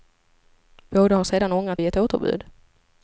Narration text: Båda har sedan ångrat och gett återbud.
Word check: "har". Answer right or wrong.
right